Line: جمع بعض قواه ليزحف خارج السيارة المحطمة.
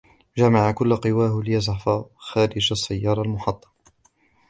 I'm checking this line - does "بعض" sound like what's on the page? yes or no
no